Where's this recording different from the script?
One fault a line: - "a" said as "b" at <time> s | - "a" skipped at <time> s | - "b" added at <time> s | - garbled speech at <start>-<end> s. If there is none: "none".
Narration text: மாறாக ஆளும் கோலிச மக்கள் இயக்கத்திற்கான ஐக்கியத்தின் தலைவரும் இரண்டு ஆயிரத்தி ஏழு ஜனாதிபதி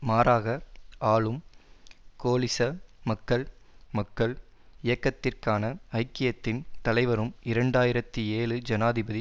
- "மக்கள்" added at 3.9 s